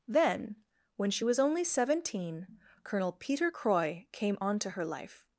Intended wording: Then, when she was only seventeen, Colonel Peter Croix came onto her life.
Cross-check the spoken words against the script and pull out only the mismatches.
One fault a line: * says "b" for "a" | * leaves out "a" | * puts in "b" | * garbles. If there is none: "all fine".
all fine